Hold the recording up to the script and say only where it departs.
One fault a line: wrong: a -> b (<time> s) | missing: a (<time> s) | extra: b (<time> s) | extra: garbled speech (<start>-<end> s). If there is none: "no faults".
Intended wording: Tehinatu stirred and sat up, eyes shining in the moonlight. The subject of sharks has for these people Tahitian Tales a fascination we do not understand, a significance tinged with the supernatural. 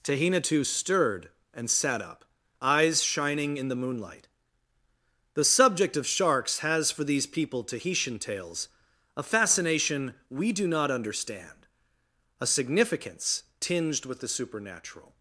no faults